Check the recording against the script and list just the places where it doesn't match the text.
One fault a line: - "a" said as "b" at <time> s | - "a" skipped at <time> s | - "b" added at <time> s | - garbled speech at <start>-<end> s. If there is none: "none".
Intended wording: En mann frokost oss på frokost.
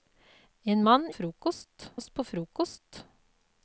none